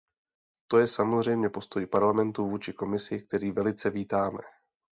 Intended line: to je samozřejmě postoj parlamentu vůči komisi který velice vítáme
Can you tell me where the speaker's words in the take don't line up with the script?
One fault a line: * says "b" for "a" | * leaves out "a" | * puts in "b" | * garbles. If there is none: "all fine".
all fine